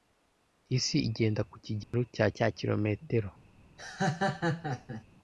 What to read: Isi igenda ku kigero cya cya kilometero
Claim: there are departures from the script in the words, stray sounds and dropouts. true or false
true